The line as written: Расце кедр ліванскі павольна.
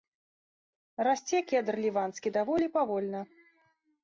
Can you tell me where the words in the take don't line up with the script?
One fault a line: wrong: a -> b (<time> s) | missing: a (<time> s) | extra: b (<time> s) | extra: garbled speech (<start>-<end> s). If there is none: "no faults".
extra: даволі (2.4 s)